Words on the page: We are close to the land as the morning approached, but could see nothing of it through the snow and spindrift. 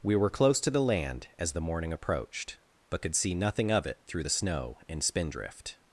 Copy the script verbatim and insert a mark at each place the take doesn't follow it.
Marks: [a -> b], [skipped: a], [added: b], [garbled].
We [are -> were] close to the land as the morning approached, but could see nothing of it through the snow and spindrift.